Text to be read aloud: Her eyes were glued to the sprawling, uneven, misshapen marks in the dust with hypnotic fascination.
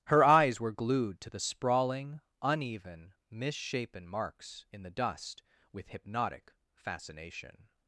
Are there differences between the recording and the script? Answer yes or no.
no